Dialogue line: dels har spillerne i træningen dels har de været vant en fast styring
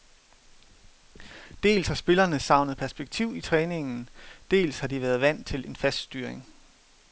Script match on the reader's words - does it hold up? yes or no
no